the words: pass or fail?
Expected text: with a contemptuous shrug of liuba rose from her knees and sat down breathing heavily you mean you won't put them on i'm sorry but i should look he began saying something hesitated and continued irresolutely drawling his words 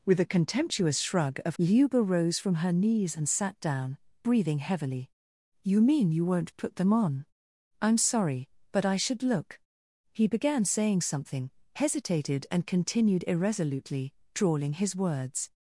pass